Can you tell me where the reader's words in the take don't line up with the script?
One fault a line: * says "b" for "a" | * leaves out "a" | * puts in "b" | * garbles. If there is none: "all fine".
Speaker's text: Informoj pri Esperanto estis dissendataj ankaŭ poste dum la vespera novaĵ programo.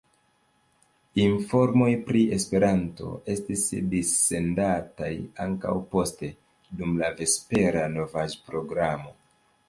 all fine